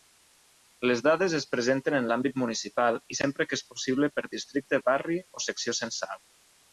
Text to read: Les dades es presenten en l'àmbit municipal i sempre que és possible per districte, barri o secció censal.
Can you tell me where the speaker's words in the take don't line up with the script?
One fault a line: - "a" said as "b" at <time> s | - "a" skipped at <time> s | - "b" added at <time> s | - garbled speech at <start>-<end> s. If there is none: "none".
none